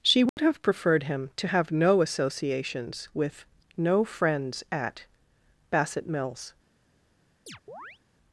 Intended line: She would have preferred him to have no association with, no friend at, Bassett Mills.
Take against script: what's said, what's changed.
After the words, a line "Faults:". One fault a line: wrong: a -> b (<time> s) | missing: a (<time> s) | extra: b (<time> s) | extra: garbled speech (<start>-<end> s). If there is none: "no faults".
She would have preferred him to have no associations with, no friends at, Bassett Mills.
Faults:
wrong: association -> associations (2.0 s)
wrong: friend -> friends (4.0 s)